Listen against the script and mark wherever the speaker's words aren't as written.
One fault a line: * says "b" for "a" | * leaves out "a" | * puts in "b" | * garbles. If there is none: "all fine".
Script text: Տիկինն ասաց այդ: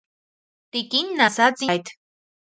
all fine